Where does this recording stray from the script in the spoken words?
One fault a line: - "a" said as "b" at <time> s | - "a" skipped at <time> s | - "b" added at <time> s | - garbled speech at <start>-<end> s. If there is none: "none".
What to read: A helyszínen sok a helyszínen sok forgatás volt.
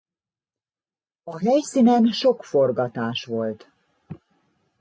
- "a helyszínen sok" skipped at 2.4 s